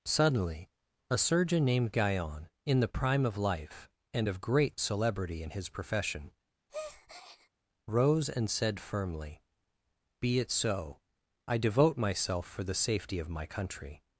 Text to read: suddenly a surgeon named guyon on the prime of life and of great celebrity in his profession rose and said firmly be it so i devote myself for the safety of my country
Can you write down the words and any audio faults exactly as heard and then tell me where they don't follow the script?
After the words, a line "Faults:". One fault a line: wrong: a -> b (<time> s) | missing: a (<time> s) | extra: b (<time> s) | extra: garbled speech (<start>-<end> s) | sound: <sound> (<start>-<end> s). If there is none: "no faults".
suddenly a surgeon named guyon in the prime of life and of great celebrity in his profession rose and said firmly be it so i devote myself for the safety of my country
Faults:
wrong: on -> in (2.6 s)
sound: breath (6.7-7.5 s)